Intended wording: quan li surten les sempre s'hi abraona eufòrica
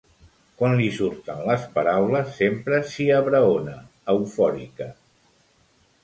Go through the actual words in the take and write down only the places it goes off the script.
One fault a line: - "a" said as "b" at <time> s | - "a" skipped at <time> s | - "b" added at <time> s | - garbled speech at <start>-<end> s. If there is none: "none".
- "paraules" added at 1.8 s